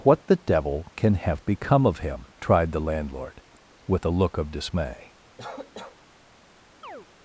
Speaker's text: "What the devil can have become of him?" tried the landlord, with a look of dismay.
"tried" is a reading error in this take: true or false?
false